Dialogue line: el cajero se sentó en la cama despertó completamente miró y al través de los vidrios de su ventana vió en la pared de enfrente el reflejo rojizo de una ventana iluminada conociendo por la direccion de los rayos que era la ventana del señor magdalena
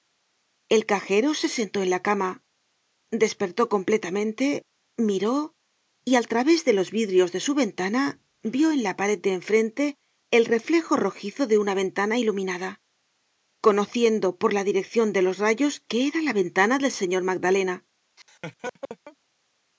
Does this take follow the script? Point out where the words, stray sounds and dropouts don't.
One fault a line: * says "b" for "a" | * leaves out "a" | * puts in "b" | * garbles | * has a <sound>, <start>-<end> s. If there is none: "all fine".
* has a laugh, 18.2-19.2 s